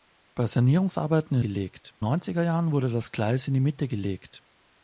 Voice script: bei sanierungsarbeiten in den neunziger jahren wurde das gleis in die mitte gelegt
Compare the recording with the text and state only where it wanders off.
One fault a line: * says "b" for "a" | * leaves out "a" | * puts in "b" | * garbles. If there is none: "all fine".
* says "gelegt" for "den"